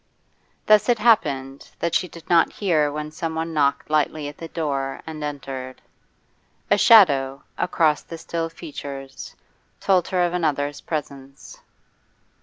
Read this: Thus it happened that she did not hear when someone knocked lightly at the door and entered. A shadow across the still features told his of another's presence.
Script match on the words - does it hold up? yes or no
no